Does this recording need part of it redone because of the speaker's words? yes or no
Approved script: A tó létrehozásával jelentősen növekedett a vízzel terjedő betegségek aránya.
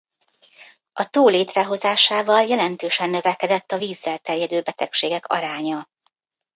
no